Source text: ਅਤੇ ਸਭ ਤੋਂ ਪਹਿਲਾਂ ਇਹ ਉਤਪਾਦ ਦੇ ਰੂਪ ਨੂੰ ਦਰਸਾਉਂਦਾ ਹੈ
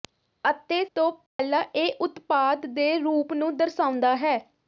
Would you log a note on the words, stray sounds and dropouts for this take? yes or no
yes